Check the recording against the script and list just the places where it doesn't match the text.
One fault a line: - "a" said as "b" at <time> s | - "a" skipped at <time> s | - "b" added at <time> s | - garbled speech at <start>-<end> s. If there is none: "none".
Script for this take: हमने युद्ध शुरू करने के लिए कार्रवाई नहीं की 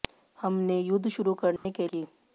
- "लिए कार्रवाई नहीं" skipped at 1.9 s